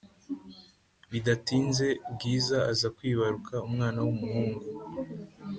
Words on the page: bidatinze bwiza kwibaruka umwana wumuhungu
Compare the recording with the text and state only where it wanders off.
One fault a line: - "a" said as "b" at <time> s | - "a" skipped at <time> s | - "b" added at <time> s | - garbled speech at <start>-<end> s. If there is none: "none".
- "aza" added at 2.7 s